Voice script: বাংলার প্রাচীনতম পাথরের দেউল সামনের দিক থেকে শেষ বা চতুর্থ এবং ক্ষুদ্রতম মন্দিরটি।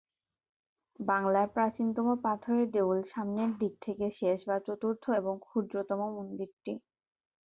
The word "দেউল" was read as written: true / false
true